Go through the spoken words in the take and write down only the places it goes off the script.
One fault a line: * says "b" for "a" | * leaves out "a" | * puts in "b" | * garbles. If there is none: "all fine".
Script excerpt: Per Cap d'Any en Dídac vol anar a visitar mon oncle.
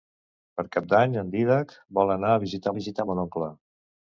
* puts in "visitar"